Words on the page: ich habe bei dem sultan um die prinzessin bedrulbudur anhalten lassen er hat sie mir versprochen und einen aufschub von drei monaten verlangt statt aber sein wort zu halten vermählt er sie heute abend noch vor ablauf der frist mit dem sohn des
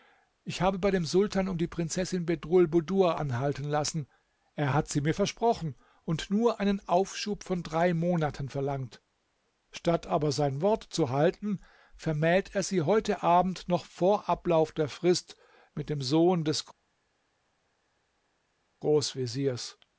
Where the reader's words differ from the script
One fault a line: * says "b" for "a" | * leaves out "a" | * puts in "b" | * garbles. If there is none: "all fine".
* puts in "nur"